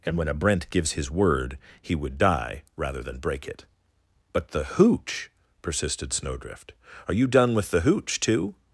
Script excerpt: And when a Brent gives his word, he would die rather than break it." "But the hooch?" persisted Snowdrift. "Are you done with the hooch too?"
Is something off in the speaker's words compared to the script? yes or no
no